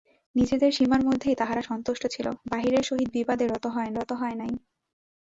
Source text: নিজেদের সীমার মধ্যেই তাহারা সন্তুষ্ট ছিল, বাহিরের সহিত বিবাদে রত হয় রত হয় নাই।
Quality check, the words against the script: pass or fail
pass